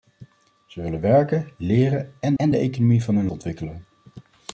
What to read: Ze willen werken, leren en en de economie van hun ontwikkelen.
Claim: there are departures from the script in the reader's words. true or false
false